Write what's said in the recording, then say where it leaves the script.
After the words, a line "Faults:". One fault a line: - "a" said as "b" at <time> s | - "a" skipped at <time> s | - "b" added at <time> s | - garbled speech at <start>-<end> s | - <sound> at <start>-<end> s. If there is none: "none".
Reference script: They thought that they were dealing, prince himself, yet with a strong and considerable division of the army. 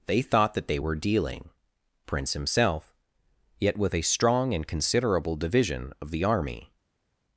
They thought that they were dealing, prince himself, yet with a strong and considerable division of the army.
Faults:
none